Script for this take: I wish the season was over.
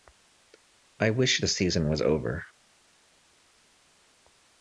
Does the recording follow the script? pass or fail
pass